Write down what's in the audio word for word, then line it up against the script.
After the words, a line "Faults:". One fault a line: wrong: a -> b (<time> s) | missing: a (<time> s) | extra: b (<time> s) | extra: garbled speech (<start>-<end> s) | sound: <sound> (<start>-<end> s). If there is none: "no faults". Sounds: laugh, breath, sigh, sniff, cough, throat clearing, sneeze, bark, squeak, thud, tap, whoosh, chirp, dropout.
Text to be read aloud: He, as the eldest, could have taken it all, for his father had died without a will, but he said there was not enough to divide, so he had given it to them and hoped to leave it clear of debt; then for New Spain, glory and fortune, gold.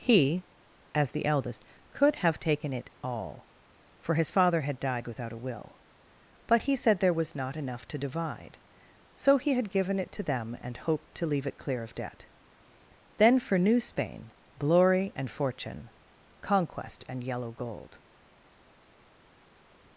He, as the eldest, could have taken it all, for his father had died without a will, but he said there was not enough to divide, so he had given it to them and hoped to leave it clear of debt; then for New Spain, glory and fortune, conquest and yellow gold.
Faults:
extra: conquest and yellow (16.4 s)